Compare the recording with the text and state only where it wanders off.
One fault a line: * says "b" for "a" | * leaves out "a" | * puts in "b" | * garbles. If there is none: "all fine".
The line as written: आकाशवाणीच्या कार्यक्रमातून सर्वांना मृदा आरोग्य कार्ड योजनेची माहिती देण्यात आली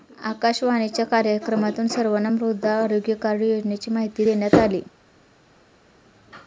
all fine